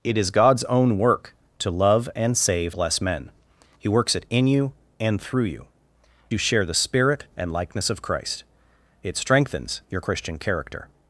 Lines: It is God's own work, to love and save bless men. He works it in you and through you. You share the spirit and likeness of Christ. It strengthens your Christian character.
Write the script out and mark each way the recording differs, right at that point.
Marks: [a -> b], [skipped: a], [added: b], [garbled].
It is God's own work, to love and save bless men. He works it in you and through you. You share the spirit and likeness of Christ. It strengthens your Christian character.